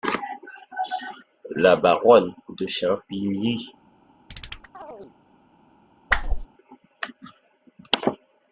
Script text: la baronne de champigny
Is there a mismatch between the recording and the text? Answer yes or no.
no